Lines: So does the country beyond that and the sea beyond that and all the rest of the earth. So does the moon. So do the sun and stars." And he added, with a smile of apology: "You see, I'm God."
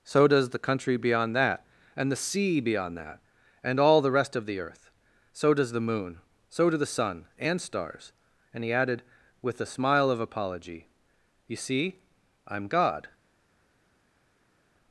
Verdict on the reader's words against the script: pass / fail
pass